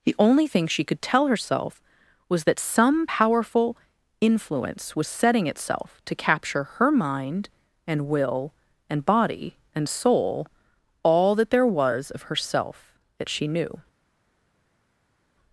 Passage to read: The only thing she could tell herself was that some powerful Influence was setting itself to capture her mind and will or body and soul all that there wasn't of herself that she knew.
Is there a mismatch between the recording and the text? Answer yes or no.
yes